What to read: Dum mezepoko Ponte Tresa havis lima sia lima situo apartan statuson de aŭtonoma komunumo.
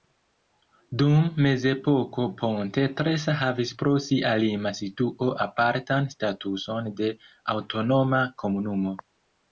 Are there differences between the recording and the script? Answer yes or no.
yes